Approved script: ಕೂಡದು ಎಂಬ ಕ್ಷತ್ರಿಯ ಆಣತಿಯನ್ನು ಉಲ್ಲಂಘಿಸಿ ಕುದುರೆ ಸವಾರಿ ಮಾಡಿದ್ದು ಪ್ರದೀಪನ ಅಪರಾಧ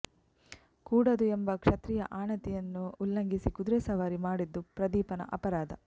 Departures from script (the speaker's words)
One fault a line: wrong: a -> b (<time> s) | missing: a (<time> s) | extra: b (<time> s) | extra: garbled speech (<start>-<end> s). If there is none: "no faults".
no faults